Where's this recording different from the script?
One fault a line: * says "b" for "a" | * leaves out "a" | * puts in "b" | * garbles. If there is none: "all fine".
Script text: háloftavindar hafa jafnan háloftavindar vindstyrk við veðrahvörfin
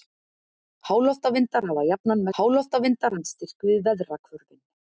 all fine